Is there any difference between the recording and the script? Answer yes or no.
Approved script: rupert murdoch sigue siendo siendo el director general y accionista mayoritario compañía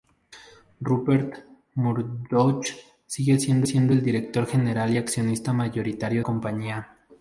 no